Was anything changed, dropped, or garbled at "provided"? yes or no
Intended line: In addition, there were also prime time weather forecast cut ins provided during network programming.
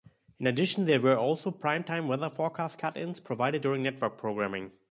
no